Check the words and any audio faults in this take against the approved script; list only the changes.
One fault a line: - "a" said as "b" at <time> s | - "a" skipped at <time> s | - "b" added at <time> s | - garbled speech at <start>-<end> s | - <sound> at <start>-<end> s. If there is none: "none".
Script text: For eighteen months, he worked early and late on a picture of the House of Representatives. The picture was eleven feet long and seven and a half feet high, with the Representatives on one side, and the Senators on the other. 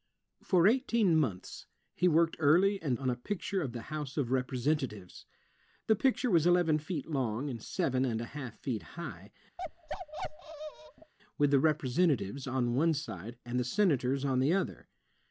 - "late" skipped at 3.0 s
- bark at 9.6-11.1 s